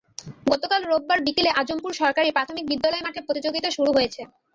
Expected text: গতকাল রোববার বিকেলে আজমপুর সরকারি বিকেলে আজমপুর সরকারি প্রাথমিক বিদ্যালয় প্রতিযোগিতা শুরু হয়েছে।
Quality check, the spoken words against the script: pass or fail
fail